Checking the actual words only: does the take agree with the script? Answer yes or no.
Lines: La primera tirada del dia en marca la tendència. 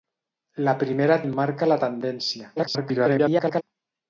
no